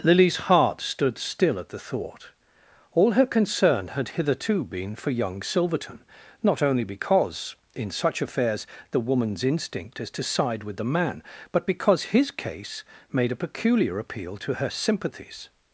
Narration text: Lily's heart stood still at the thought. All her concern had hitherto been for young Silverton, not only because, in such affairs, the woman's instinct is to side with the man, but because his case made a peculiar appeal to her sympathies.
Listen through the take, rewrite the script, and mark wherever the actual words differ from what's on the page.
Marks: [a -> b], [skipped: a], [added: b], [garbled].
Lily's heart stood still at the thought. All her concern had hitherto been for young Silverton, not only because, in such affairs, the woman's instinct is to side with the man, but because his case made a peculiar appeal to her sympathies.